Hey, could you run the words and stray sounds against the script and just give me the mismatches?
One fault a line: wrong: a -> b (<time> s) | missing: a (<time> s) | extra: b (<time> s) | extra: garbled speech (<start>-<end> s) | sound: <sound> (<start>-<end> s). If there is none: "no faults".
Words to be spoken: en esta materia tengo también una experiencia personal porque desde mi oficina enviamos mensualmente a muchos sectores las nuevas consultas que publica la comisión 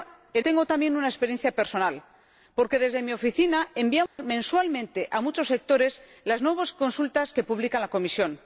missing: esta materia (0.5 s)
sound: dropout (4.1-4.2 s)